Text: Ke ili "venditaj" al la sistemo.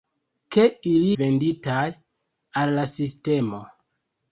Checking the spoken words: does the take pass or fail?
pass